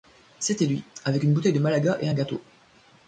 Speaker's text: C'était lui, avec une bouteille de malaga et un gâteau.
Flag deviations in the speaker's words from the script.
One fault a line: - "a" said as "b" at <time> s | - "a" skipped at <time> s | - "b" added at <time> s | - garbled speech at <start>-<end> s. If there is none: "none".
none